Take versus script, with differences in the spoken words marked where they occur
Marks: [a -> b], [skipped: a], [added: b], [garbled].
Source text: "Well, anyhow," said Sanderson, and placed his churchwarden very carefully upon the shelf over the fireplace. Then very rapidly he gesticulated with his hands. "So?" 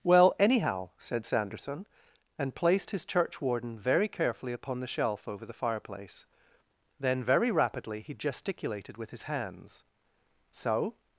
"Well, anyhow," said Sanderson, and placed his churchwarden very carefully upon the shelf over the fireplace. Then very rapidly he gesticulated with his hands. "So?"